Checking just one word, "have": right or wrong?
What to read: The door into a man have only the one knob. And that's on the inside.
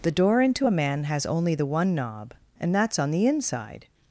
wrong